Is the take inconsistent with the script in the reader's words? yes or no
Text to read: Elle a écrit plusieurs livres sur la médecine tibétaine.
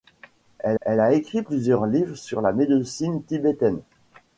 yes